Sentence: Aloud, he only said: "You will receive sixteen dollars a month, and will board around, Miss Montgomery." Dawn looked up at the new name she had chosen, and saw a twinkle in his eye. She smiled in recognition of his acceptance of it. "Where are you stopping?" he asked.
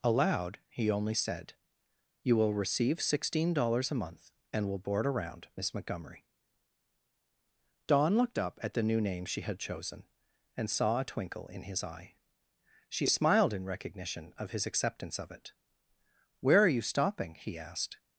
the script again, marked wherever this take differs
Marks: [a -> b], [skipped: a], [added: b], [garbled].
Aloud, he only said: "You will receive sixteen dollars a month, and will board around, Miss Montgomery." Dawn looked up at the new name she had chosen, and saw a twinkle in his eye. She smiled in recognition of his acceptance of it. "Where are you stopping?" he asked.